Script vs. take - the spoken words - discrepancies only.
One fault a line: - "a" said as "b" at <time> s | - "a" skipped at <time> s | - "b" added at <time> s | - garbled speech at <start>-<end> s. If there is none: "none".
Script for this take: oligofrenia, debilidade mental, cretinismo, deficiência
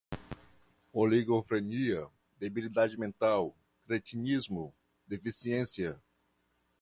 none